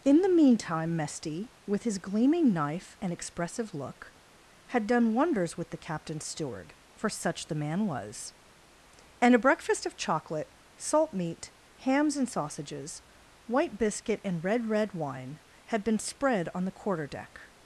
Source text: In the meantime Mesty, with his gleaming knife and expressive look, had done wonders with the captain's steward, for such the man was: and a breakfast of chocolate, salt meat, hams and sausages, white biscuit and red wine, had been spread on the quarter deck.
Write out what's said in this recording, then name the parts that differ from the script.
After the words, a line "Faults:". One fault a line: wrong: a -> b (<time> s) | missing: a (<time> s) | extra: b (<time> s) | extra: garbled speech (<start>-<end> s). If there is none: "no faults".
In the meantime Mesty, with his gleaming knife and expressive look, had done wonders with the captain's steward, for such the man was: and a breakfast of chocolate, salt meat, hams and sausages, white biscuit and red red wine, had been spread on the quarter deck.
Faults:
extra: red (14.7 s)